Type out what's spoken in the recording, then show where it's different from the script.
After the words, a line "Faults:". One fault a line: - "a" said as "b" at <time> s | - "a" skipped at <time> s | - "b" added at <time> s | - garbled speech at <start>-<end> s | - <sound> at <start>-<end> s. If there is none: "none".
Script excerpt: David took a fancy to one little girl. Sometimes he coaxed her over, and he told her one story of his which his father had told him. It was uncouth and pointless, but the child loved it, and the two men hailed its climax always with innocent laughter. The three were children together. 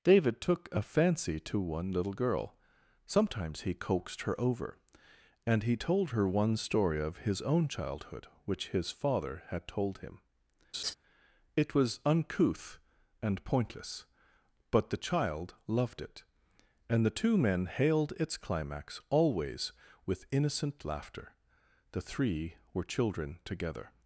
David took a fancy to one little girl. Sometimes he coaxed her over, and he told her one story of his own childhood which his father had told him. It was uncouth and pointless, but the child loved it, and the two men hailed its climax always with innocent laughter. The three were children together.
Faults:
- "own childhood" added at 7.4 s
- laugh at 10.7-10.9 s